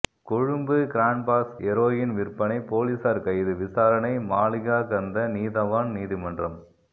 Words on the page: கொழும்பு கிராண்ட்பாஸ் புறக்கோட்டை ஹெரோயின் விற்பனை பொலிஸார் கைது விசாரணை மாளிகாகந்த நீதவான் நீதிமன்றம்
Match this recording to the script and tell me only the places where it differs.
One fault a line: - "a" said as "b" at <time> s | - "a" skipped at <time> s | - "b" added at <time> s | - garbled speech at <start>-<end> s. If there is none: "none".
- "புறக்கோட்டை" skipped at 1.5 s